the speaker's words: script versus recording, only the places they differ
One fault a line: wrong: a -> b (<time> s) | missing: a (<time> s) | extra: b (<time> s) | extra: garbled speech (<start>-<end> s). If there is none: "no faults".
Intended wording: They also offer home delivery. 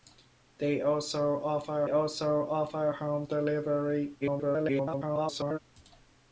extra: also offer (1.9 s)
extra: garbled speech (4.2-5.6 s)